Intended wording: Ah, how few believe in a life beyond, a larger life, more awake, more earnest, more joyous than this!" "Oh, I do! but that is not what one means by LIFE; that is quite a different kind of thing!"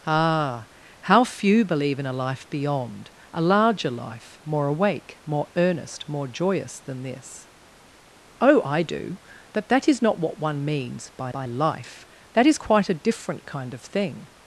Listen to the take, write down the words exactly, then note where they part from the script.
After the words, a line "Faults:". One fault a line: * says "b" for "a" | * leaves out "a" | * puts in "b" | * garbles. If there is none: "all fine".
Ah, how few believe in a life beyond, a larger life, more awake, more earnest, more joyous than this!" "Oh, I do! but that is not what one means by by LIFE; that is quite a different kind of thing!"
Faults:
* puts in "by"